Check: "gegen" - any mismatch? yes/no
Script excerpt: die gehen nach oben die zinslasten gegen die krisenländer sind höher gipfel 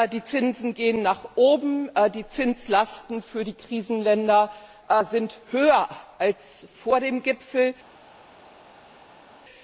yes